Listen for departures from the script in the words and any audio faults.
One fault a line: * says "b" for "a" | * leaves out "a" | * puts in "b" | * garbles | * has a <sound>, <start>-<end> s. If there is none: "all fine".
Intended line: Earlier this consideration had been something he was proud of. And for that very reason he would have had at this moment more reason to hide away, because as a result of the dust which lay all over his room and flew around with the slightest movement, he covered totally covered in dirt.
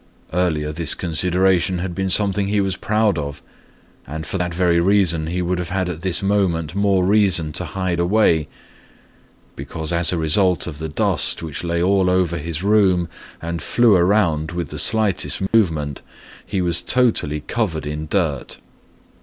* has a dropout, 15.5-15.5 s
* says "was" for "covered"